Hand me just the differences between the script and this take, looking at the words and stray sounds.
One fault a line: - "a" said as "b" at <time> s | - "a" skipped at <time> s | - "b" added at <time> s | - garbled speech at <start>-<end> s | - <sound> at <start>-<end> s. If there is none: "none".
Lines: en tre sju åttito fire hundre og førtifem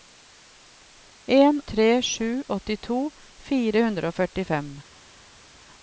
none